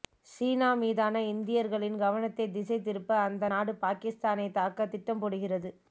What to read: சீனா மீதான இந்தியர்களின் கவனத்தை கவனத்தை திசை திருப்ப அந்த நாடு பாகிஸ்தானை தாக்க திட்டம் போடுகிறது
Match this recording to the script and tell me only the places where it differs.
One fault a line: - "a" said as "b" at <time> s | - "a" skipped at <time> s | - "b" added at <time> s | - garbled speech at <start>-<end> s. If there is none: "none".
- "கவனத்தை" skipped at 2.5 s